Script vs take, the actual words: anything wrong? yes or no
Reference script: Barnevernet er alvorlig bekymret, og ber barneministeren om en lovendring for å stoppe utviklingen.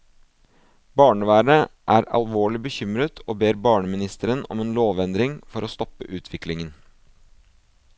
no